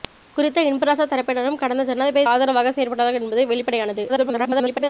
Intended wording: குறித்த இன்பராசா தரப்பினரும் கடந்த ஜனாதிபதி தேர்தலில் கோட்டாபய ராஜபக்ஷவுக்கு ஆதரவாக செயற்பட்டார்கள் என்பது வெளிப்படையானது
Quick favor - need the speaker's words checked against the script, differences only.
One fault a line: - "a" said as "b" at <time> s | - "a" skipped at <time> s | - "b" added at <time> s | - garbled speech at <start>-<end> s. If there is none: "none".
- "தேர்தலில் கோட்டாபய ராஜபக்ஷவுக்கு" skipped at 2.3 s
- garbled speech at 4.1-4.9 s